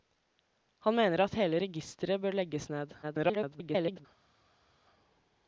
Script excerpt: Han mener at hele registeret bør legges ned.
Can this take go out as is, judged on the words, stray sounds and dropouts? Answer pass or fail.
fail